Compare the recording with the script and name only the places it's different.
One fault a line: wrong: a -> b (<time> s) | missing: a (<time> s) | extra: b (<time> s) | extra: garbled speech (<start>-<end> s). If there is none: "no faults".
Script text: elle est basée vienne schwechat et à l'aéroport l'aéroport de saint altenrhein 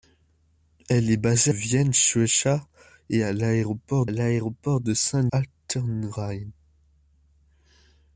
no faults